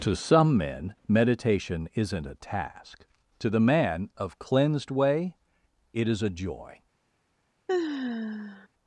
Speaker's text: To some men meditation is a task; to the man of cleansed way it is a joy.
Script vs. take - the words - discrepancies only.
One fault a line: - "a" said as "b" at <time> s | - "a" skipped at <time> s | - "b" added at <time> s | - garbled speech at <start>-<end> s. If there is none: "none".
- "is" said as "isn't" at 1.9 s